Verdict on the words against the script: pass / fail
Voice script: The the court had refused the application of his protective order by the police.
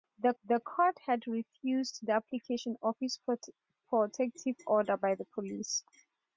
pass